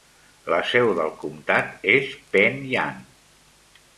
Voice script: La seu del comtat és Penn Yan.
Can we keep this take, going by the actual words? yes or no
yes